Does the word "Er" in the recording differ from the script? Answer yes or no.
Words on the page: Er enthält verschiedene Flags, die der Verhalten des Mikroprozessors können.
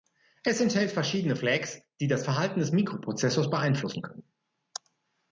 yes